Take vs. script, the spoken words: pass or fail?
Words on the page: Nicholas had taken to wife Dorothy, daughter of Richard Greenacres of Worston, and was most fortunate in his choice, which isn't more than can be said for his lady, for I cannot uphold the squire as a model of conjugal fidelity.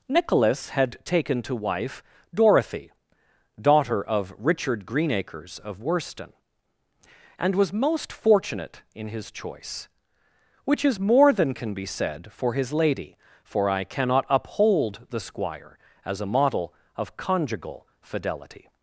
fail